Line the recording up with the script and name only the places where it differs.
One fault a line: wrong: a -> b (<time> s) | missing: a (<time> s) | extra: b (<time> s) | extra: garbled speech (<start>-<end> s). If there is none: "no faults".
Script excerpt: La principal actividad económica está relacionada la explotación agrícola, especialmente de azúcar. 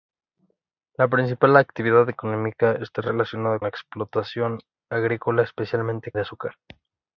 no faults